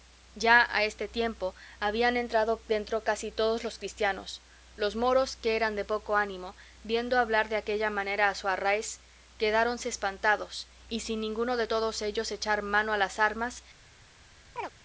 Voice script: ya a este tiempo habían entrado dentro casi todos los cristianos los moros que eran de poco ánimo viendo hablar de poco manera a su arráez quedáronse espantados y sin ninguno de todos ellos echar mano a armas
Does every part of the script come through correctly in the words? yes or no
no